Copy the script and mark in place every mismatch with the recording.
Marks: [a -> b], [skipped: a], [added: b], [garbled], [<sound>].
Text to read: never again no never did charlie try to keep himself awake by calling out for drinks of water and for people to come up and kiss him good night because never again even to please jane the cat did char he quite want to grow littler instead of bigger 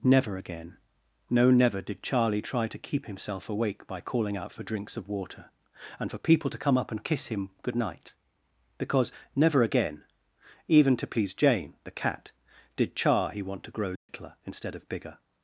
never again no never did charlie try to keep himself awake by calling out for drinks of water and for people to come up and kiss him good night because never again even to please jane the cat did char he [skipped: quite] want to grow littler [dropout] instead of bigger